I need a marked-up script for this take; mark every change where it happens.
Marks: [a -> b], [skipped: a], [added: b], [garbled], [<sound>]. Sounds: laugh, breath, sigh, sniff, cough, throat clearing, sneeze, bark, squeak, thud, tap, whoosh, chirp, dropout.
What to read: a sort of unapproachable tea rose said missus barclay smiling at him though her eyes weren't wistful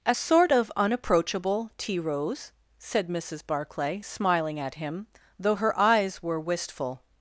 a sort of unapproachable tea rose said missus barclay smiling at him though her eyes [weren't -> were] wistful